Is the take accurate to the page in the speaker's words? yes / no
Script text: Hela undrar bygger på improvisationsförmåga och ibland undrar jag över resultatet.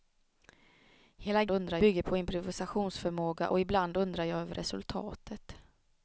yes